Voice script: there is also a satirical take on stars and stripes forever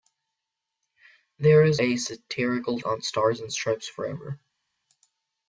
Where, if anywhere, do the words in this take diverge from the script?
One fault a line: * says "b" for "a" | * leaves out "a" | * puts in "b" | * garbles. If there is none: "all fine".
* leaves out "also"
* leaves out "take"